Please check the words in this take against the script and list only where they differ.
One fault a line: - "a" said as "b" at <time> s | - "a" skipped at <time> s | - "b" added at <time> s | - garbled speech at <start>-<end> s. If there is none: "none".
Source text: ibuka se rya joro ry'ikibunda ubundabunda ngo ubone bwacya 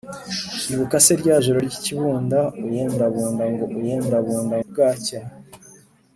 - "ubone" said as "ubundabunda" at 3.8 s